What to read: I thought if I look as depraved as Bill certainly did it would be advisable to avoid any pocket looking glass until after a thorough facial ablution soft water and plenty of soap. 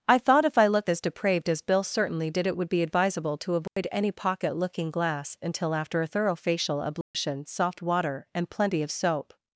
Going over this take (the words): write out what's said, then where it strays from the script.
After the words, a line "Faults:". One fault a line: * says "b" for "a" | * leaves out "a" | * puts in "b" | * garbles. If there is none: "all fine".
I thought if I look as depraved as Bill certainly did it would be advisable to avoid any pocket looking glass until after a thorough facial ablution soft water and plenty of soap.
Faults:
all fine